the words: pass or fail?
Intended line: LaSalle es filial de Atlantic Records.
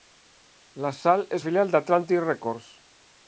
pass